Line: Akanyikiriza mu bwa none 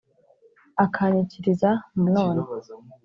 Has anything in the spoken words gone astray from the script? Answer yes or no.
yes